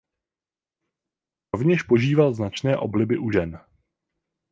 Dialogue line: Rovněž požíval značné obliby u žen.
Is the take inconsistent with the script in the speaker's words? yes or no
no